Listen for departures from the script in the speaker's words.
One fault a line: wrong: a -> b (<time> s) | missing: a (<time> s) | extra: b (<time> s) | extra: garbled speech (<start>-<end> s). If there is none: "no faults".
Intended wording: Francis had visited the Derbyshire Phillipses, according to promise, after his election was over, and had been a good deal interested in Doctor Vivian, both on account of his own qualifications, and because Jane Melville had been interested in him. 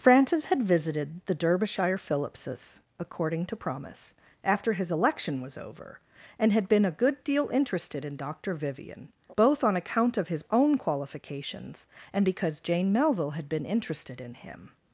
no faults